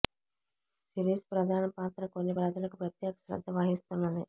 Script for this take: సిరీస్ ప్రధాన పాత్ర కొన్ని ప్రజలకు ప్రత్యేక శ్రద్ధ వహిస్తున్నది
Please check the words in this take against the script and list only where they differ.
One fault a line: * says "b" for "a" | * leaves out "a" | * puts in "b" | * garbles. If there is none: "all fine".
all fine